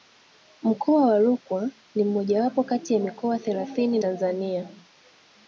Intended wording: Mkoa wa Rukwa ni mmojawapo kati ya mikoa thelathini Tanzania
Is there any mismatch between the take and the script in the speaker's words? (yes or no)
no